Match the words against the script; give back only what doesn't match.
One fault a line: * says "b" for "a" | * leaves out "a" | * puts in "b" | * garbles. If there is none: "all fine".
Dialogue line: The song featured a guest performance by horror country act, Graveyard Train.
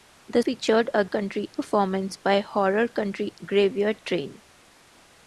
* leaves out "song"
* says "country" for "guest"
* leaves out "act"